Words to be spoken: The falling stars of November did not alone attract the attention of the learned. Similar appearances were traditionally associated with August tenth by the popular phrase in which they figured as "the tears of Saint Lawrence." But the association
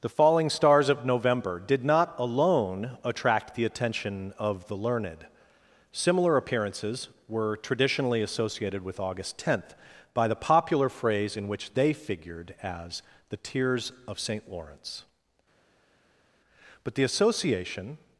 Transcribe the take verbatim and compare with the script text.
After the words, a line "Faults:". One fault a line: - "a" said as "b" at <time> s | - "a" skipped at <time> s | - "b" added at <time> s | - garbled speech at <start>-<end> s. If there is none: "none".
The falling stars of November did not alone attract the attention of the learned. Similar appearances were traditionally associated with August tenth by the popular phrase in which they figured as "the tears of Saint Lawrence." But the association
Faults:
none